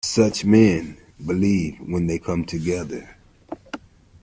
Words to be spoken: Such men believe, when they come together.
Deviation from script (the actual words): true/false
false